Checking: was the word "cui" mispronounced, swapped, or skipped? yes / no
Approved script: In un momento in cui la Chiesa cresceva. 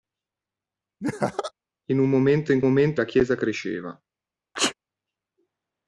yes